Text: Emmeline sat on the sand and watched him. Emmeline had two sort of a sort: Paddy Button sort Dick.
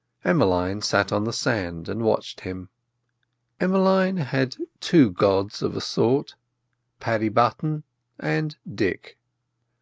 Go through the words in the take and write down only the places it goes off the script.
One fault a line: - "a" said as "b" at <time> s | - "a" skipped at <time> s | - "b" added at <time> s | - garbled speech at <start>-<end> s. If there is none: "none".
- "sort" said as "gods" at 5.1 s
- "sort" said as "and" at 8.2 s